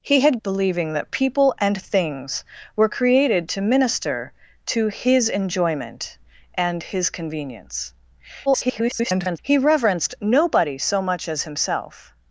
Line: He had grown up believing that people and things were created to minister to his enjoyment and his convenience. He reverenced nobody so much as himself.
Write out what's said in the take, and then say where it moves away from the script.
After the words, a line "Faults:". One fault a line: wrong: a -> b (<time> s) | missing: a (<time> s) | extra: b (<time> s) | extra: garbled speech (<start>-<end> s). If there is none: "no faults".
He had believing that people and things were created to minister to his enjoyment and his convenience. [garbled] He reverenced nobody so much as himself.
Faults:
missing: grown up (0.4 s)
extra: garbled speech (8.5-9.4 s)